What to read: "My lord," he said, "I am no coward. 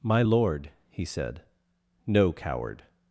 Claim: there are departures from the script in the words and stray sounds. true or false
true